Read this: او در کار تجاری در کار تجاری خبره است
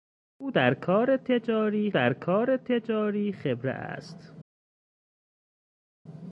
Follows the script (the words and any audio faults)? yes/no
yes